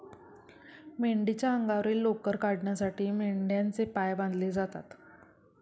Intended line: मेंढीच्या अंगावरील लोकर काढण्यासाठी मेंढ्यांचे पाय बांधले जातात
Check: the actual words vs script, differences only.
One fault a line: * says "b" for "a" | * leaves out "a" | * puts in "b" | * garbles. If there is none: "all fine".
all fine